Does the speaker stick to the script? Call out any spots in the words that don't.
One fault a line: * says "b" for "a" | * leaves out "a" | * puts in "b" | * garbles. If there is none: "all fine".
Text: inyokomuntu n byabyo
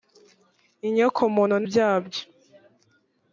all fine